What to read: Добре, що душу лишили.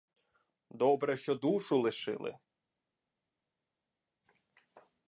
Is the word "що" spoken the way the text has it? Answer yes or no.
yes